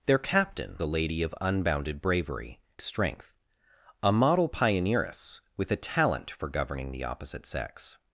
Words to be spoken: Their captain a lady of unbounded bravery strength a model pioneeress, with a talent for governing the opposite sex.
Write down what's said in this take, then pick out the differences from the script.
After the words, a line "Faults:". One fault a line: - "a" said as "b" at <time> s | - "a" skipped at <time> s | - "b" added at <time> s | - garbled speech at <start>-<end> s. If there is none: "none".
Their captain a lady of unbounded bravery strength a model pioneeress, with a talent for governing the opposite sex.
Faults:
none